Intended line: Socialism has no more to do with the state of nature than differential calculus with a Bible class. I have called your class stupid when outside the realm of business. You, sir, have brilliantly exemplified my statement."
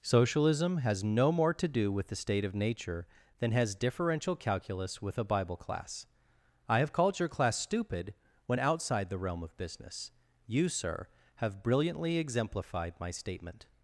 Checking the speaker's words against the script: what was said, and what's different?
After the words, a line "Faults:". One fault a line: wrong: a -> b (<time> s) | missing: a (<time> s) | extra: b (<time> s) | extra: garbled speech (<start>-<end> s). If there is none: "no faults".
Socialism has no more to do with the state of nature than has differential calculus with a Bible class. I have called your class stupid when outside the realm of business. You, sir, have brilliantly exemplified my statement."
Faults:
extra: has (3.5 s)